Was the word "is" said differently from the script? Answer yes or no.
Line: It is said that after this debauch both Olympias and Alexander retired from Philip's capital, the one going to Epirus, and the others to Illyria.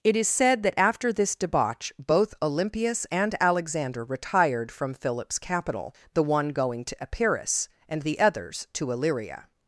no